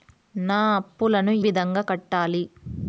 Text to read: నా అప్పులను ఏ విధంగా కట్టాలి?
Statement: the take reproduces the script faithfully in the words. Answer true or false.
false